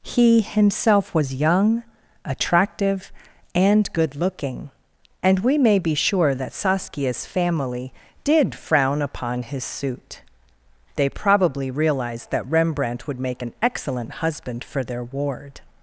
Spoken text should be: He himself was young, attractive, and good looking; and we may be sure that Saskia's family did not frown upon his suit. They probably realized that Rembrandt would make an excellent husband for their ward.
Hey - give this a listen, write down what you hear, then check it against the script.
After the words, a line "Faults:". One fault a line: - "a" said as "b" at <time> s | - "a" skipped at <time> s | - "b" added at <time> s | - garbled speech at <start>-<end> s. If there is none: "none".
He himself was young, attractive, and good looking; and we may be sure that Saskia's family did frown upon his suit. They probably realized that Rembrandt would make an excellent husband for their ward.
Faults:
- "not" skipped at 8.5 s